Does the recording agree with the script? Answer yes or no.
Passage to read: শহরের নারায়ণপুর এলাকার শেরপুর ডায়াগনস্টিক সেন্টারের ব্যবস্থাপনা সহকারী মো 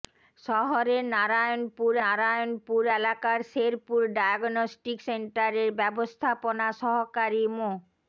no